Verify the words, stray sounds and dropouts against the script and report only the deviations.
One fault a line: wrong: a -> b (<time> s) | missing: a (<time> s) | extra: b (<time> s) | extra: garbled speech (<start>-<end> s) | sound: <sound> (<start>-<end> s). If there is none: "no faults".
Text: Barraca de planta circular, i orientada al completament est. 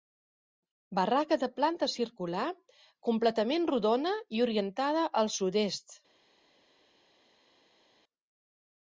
extra: completament rodona (3.1 s)
wrong: completament -> sud (5.3 s)